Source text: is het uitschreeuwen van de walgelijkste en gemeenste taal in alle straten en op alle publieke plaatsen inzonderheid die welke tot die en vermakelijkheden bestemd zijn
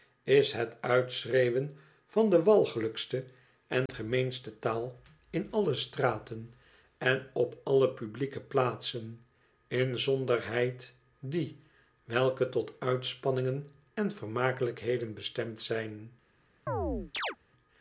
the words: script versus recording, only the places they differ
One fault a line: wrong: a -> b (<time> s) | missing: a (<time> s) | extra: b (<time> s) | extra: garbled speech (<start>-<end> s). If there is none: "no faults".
wrong: die -> uitspanningen (12.8 s)